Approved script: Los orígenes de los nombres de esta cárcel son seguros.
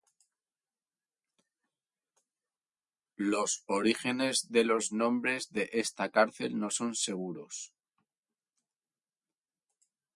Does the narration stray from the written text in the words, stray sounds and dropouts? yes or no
yes